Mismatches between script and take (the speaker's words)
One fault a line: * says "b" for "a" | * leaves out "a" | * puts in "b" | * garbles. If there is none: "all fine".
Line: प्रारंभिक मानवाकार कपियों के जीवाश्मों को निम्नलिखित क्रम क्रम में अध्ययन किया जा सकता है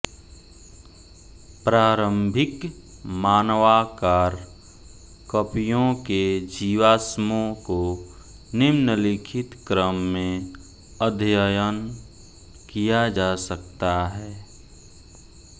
* leaves out "क्रम"